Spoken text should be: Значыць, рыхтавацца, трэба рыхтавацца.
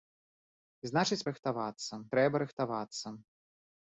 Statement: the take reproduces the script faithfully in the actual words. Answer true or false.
true